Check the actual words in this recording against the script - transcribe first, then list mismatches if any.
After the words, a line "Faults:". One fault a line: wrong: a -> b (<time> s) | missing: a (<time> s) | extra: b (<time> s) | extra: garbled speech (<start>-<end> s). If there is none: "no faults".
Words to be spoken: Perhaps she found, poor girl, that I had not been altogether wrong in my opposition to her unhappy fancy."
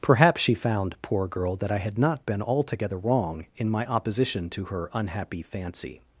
Perhaps she found, poor girl, that I had not been altogether wrong in my opposition to her unhappy fancy."
Faults:
no faults